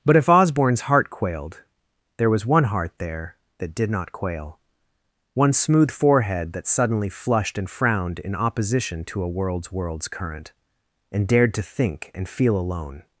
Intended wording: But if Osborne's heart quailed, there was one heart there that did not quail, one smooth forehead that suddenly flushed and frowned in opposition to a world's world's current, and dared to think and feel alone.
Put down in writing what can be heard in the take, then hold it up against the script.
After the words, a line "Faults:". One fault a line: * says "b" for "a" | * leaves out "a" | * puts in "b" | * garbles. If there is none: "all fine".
But if Osborne's heart quailed, there was one heart there that did not quail, one smooth forehead that suddenly flushed and frowned in opposition to a world's world's current, and dared to think and feel alone.
Faults:
all fine